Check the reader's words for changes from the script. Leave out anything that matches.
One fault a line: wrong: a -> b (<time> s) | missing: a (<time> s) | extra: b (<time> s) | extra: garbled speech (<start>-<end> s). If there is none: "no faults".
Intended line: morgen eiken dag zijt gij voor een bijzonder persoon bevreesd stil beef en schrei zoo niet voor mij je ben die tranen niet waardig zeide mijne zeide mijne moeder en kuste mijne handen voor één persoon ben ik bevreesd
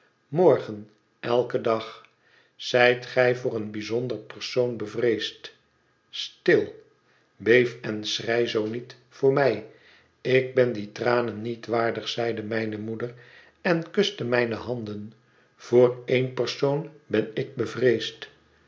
wrong: je -> ik (10.2 s)
missing: zeide mijne (12.8 s)